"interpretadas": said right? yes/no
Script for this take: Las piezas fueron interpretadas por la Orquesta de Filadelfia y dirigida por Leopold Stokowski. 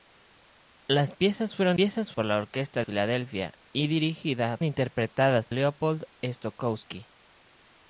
no